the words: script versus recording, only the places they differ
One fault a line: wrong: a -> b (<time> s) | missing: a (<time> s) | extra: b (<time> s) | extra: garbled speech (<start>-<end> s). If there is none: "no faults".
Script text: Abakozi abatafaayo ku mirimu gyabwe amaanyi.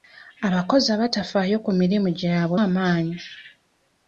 no faults